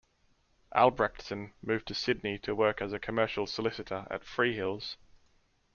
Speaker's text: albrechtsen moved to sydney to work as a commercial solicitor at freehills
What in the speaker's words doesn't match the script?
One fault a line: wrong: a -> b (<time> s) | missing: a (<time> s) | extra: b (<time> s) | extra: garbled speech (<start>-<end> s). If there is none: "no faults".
no faults